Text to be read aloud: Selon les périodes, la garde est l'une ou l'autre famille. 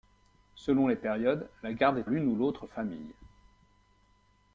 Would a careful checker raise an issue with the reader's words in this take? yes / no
no